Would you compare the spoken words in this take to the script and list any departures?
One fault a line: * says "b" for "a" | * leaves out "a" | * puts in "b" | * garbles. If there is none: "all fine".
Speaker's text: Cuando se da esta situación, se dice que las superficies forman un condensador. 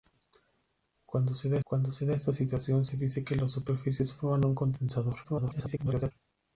* puts in "cuando se da"
* garbles